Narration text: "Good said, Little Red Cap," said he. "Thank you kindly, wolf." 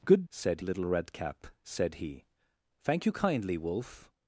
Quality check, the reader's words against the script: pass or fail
pass